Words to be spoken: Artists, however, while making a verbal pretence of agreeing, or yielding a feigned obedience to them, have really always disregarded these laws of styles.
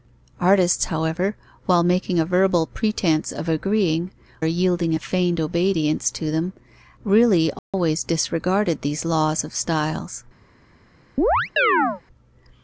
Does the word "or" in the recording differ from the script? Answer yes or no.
yes